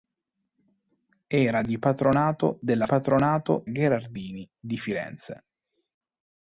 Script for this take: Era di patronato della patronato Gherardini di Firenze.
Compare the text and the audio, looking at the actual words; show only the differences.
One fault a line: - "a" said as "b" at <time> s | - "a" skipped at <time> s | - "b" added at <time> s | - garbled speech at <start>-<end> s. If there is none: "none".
none